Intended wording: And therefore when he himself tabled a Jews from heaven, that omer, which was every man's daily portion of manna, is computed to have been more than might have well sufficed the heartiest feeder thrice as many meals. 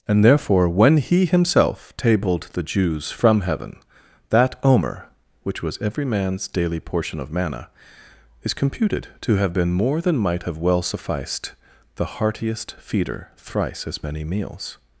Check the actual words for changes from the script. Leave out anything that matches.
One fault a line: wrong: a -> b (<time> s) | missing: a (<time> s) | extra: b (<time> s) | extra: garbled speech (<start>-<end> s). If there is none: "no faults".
wrong: a -> the (2.5 s)